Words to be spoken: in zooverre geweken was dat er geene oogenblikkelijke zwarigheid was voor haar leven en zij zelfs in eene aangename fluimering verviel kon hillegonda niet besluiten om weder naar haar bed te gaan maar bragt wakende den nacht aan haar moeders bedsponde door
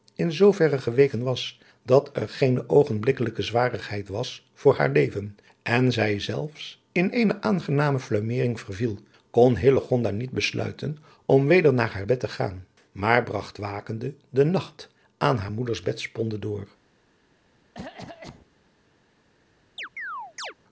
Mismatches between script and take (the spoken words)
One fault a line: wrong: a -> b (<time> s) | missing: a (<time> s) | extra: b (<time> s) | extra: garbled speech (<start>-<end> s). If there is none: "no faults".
no faults